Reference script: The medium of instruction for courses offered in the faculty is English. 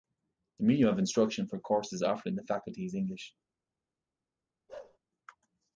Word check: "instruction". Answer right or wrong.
right